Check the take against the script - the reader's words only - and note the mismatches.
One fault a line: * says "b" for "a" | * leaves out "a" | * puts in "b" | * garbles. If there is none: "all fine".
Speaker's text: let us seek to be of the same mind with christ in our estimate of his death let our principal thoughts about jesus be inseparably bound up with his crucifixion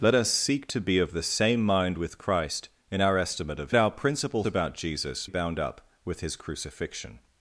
* leaves out "his death let"
* leaves out "thoughts"
* leaves out "be inseparably"